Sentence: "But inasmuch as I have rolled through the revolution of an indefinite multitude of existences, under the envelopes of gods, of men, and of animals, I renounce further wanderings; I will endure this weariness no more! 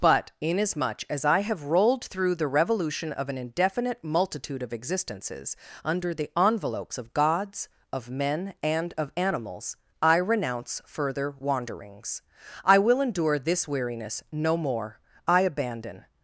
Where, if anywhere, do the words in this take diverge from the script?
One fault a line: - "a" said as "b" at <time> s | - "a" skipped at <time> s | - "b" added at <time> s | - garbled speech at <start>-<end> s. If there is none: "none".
- "I abandon" added at 15.3 s